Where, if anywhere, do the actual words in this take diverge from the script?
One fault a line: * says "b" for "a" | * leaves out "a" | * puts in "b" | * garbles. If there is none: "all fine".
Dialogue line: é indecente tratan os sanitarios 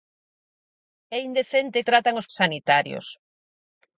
all fine